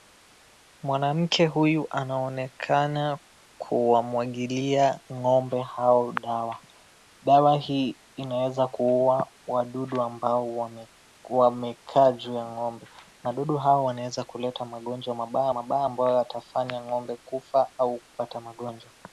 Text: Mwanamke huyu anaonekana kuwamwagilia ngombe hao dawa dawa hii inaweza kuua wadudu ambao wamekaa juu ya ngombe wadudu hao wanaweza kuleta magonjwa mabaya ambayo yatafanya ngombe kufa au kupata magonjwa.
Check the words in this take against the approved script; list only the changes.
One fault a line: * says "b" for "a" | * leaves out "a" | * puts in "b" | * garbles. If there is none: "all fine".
* puts in "mabaya"